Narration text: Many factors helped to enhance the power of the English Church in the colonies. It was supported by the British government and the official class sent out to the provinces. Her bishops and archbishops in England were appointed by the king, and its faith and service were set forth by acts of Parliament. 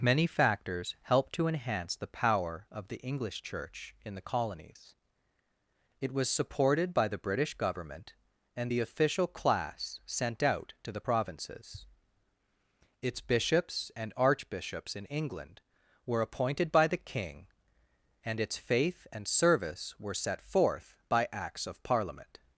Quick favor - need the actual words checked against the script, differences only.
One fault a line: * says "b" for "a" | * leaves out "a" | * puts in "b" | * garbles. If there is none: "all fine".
* says "Its" for "Her"